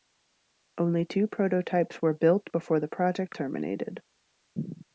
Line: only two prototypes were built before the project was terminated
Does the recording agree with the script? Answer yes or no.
no